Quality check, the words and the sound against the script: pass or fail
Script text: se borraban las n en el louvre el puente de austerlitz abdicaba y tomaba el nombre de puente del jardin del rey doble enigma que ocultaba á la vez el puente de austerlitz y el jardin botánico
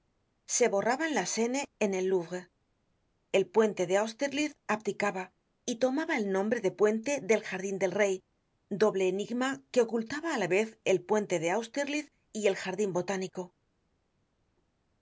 pass